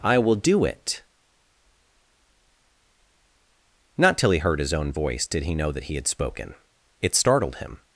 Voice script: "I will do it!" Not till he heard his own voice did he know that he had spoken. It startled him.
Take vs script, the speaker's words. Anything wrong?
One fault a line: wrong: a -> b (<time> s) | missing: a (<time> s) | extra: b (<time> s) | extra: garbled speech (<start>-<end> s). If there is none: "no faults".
no faults